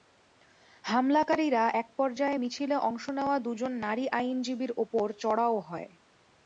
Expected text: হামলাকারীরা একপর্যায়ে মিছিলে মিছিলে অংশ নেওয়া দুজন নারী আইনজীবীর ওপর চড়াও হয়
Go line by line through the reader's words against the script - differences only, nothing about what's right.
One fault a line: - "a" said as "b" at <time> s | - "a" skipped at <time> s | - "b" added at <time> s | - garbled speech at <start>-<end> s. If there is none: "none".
- "মিছিলে" skipped at 2.8 s